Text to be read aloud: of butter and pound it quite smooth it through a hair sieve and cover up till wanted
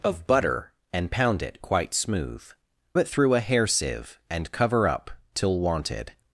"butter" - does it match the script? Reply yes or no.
yes